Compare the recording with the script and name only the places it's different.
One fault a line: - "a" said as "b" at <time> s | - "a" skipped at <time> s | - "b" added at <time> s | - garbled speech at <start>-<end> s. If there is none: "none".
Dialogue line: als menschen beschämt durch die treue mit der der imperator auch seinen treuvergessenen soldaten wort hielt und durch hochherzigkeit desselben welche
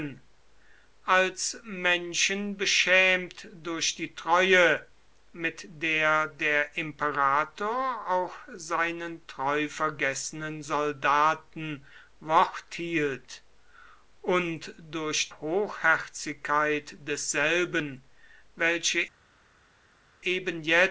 none